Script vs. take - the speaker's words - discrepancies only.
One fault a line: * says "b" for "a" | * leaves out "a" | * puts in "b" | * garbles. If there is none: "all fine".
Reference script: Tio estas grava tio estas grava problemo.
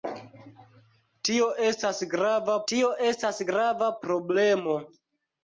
all fine